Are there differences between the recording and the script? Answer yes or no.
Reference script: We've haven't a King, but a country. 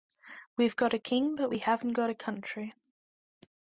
yes